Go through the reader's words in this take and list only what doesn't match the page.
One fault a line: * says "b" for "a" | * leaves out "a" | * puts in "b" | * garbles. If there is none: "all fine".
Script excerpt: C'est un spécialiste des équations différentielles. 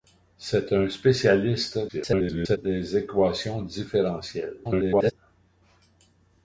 * garbles
* garbles